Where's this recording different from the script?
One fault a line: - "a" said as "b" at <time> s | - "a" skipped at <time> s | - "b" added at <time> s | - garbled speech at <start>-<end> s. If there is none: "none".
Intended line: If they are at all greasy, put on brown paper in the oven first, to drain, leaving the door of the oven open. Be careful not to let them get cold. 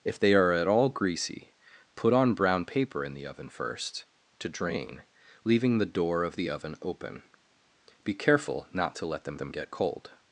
- "them" added at 9.4 s